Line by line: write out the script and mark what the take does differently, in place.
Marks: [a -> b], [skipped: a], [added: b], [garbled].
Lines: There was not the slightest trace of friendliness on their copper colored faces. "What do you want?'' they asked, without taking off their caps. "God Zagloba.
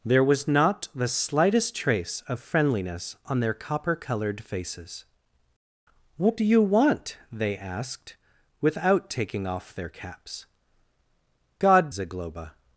There was not the slightest trace of friendliness on their copper colored faces. "What do you want?'' they asked, without taking off their caps. "God Zagloba.